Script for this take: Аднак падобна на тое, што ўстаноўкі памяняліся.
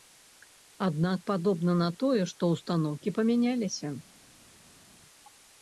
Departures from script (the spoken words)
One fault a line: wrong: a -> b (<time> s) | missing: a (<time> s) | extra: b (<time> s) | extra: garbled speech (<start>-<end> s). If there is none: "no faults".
no faults